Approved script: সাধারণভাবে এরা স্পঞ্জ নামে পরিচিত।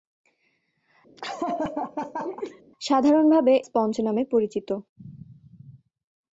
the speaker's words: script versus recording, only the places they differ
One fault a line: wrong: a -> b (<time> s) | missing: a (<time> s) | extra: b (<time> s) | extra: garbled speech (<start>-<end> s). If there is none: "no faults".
missing: এরা (3.5 s)